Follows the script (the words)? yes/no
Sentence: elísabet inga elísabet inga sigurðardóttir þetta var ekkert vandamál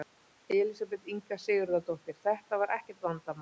no